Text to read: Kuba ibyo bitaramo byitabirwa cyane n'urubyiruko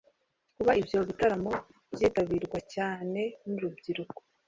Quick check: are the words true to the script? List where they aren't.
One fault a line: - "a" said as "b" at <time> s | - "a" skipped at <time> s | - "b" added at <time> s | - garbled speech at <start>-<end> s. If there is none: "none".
none